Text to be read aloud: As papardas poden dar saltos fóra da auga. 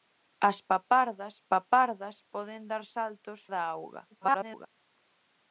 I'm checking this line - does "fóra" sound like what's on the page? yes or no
no